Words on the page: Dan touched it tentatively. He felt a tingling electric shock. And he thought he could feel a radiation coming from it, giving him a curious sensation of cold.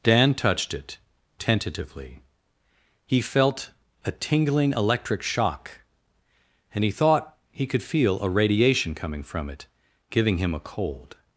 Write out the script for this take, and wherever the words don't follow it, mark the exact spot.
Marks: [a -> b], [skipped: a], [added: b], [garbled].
Dan touched it tentatively. He felt a tingling electric shock. And he thought he could feel a radiation coming from it, giving him a [skipped: curious sensation of] cold.